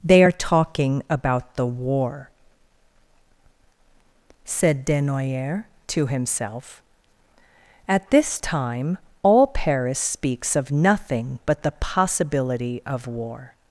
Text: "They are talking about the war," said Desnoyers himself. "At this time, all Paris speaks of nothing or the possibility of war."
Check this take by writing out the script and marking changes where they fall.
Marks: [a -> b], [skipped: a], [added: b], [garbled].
"They are talking about the war," said Desnoyers [added: to] himself. "At this time, all Paris speaks of nothing [or -> but] the possibility of war."